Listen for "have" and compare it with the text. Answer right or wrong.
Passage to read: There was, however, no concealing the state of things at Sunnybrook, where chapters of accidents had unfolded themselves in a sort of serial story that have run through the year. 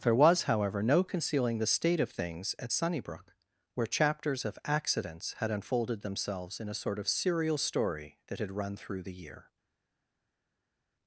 wrong